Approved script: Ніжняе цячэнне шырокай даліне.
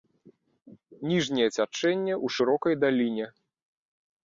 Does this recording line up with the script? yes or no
no